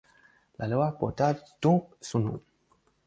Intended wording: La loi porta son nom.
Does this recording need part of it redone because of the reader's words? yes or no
yes